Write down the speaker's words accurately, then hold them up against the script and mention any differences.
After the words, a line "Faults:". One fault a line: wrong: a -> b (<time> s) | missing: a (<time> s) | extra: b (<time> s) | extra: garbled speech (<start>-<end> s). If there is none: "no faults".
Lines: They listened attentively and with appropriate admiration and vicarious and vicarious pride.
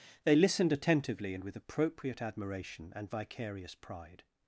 They listened attentively and with appropriate admiration and vicarious pride.
Faults:
missing: and vicarious (3.7 s)